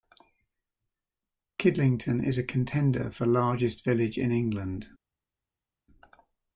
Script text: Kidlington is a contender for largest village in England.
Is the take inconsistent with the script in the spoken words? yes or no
no